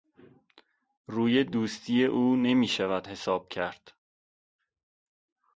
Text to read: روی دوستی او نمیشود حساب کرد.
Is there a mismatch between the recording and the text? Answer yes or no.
no